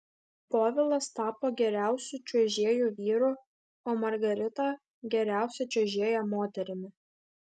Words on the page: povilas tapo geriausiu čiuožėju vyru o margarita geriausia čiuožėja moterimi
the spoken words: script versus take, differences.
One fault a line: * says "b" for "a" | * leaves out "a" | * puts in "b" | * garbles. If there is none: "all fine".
all fine